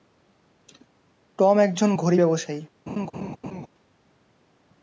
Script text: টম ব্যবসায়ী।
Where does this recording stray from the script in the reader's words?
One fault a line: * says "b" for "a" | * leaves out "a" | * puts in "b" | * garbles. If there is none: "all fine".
* puts in "একজন ঘড়ি"